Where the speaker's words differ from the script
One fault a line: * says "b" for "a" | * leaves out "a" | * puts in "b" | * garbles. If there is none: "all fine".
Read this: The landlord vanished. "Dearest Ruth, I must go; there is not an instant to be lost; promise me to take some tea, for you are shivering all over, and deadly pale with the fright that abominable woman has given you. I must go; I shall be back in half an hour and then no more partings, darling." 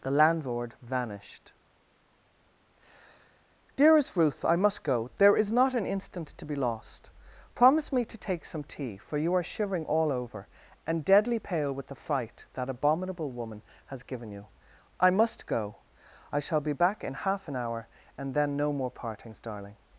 all fine